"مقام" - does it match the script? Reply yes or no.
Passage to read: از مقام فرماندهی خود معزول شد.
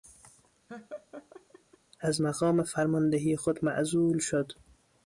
yes